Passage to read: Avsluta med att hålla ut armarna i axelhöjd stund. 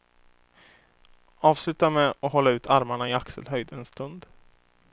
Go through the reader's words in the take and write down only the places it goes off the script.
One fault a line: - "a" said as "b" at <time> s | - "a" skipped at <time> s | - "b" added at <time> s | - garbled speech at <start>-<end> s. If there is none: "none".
- "en" added at 3.7 s